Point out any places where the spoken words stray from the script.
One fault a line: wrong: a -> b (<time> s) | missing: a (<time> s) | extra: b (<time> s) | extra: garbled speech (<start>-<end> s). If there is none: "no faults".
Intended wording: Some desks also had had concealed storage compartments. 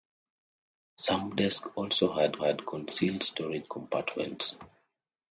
no faults